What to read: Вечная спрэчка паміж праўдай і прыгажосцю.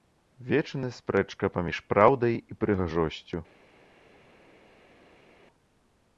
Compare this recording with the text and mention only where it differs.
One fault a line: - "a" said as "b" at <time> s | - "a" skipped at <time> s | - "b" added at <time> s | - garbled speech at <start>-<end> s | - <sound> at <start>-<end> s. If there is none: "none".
none